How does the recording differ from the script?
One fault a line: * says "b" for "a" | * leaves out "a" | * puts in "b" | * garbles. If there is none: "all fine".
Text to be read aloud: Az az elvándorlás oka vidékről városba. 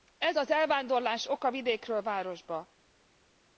* says "Ez" for "Az"